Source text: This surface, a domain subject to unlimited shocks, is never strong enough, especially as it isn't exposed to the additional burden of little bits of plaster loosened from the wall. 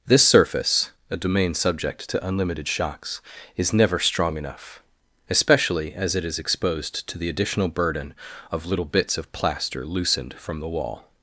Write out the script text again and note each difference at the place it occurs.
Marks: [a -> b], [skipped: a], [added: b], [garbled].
This surface, a domain subject to unlimited shocks, is never strong enough, especially as it [isn't -> is] exposed to the additional burden of little bits of plaster loosened from the wall.